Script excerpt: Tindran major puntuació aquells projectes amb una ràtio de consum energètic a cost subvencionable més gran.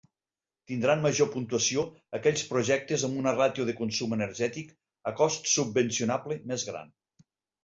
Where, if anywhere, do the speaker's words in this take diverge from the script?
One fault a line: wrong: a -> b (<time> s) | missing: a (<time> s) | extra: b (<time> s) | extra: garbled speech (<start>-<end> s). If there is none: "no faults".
no faults